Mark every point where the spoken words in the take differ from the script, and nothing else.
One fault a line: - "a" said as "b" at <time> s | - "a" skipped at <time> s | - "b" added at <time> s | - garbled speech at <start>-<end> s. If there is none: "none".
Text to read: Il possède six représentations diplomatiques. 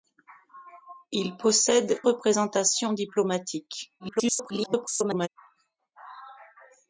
- "six" skipped at 2.0 s
- garbled speech at 4.0-5.3 s